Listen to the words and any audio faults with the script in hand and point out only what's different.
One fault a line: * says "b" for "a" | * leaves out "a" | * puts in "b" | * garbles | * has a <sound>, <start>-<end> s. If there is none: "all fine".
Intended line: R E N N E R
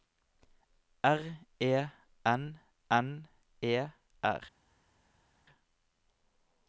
all fine